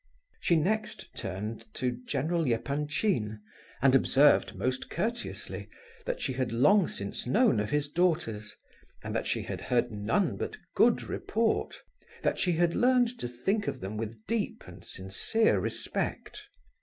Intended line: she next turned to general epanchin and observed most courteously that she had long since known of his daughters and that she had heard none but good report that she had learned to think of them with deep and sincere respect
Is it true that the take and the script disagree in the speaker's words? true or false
false